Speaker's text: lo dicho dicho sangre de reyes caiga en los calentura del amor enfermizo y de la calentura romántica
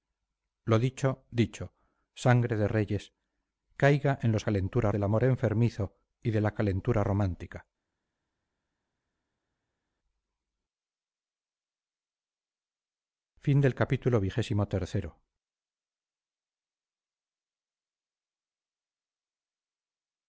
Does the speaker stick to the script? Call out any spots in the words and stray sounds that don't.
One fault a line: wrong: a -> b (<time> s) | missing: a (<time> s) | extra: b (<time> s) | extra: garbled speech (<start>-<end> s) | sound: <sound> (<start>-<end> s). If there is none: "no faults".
no faults